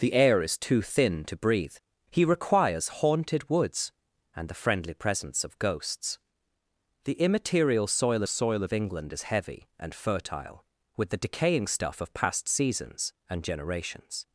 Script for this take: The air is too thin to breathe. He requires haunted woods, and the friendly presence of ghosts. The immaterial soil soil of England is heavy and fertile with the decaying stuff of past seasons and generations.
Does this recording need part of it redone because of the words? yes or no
no